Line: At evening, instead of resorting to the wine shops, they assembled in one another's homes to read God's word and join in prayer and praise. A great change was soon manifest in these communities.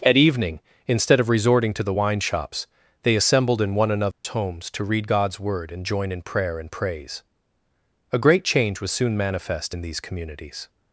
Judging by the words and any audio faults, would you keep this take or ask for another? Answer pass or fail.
fail